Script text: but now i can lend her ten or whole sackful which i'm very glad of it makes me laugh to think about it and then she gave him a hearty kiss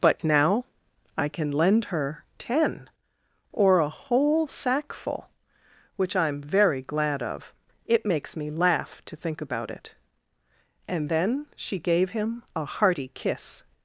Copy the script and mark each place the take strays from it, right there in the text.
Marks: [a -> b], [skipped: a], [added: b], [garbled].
but now i can lend her ten or [added: a] whole sackful which i'm very glad of it makes me laugh to think about it and then she gave him a hearty kiss